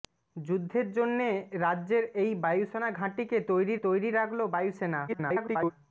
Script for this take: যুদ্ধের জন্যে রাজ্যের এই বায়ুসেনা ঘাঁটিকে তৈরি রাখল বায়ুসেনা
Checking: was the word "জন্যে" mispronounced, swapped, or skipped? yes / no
no